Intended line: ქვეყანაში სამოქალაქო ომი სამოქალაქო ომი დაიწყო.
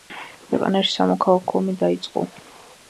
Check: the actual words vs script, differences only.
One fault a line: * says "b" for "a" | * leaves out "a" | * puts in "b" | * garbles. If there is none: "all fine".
* leaves out "სამოქალაქო ომი"